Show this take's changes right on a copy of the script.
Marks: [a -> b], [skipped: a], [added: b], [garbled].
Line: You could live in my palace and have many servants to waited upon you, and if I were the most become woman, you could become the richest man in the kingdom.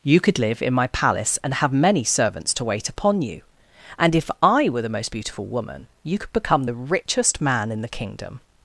You could live in my palace and have many servants to [waited -> wait] upon you, and if I were the most [become -> beautiful] woman, you could become the richest man in the kingdom.